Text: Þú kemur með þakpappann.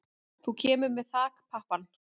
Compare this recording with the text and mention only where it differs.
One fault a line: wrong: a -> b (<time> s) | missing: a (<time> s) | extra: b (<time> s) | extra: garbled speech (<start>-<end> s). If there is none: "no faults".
no faults